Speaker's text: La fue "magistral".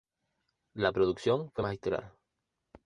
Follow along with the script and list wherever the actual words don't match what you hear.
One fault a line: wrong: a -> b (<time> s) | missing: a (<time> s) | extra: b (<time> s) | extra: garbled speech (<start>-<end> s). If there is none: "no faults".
extra: producción (0.9 s)